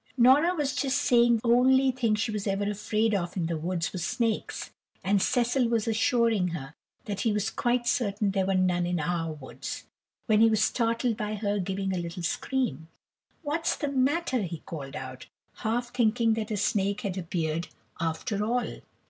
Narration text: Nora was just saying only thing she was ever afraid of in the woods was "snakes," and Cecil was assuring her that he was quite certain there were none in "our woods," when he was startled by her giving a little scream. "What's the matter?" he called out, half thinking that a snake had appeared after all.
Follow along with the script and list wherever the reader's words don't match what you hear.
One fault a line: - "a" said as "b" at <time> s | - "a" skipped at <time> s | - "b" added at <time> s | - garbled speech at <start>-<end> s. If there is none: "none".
none